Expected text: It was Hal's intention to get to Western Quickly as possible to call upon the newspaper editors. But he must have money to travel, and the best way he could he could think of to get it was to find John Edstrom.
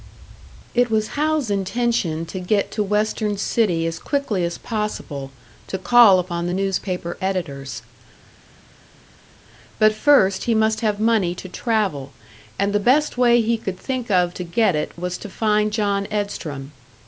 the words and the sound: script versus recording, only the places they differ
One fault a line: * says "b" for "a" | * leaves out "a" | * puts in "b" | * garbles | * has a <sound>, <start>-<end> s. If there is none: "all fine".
* puts in "City as"
* puts in "first"
* leaves out "he could"